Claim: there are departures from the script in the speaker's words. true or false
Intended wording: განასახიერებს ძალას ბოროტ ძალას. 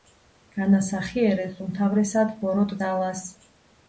true